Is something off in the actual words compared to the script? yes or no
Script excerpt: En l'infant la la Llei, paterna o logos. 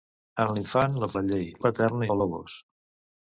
no